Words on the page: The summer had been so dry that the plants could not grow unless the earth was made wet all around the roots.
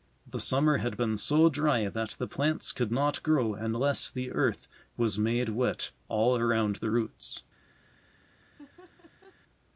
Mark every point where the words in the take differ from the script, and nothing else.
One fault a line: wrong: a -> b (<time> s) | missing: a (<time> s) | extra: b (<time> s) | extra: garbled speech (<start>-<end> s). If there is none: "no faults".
no faults